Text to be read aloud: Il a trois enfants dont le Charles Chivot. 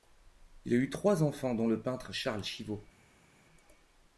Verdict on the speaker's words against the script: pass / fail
fail